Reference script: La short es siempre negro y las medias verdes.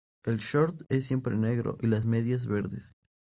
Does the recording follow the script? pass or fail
fail